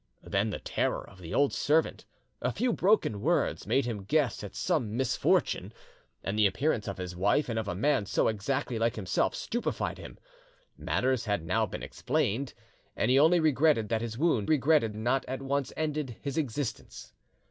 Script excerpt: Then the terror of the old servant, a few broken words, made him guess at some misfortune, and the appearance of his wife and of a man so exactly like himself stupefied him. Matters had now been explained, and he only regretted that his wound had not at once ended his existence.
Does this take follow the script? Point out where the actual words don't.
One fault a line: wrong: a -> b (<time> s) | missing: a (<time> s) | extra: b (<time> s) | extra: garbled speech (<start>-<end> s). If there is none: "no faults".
wrong: had -> regretted (14.4 s)